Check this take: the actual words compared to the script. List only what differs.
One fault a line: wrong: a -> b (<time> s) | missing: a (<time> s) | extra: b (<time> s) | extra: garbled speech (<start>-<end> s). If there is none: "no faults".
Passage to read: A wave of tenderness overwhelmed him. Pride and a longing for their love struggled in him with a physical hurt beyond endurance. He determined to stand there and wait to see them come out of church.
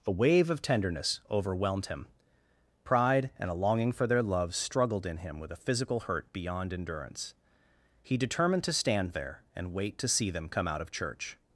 no faults